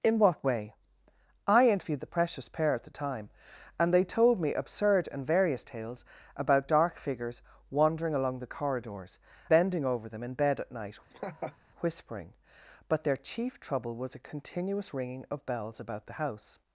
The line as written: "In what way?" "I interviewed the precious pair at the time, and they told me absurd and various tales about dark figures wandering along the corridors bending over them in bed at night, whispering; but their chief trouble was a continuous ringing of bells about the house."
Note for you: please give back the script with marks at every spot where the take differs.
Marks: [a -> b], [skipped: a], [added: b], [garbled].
"In what way?" "I interviewed the precious pair at the time, and they told me absurd and various tales about dark figures wandering along the corridors bending over them in bed at night, whispering; but their chief trouble was a continuous ringing of bells about the house."